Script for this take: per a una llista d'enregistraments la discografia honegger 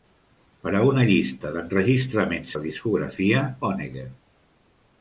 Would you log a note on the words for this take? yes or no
no